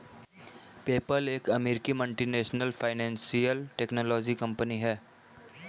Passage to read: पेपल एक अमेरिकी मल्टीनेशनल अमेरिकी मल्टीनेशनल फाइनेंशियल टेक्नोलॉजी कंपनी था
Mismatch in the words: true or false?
true